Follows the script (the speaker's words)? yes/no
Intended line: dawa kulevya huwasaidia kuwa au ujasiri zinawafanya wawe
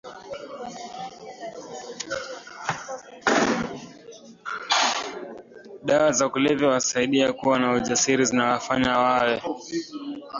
no